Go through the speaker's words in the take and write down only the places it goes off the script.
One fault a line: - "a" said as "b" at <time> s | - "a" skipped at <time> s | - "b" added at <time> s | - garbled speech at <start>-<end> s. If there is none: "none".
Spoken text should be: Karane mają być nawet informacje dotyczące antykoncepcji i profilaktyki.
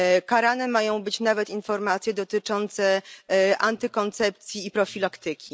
none